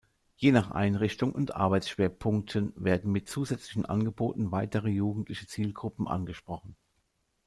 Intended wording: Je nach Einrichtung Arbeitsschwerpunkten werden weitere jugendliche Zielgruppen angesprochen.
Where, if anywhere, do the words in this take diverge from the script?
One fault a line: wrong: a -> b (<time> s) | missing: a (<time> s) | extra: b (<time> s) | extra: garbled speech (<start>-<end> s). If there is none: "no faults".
extra: und (1.3 s)
extra: mit zusätzlichen Angeboten (3.1 s)